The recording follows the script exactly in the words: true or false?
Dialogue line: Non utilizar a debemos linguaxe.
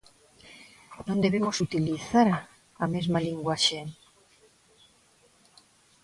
false